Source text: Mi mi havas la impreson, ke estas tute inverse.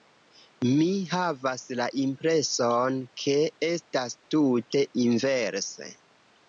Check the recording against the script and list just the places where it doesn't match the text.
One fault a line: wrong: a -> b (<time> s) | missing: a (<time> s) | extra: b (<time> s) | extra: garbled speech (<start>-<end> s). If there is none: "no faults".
missing: mi (0.9 s)